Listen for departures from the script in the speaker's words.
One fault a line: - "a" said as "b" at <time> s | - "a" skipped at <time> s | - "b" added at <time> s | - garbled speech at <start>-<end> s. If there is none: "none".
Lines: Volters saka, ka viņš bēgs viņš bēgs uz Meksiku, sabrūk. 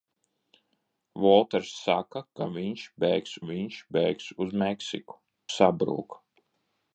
none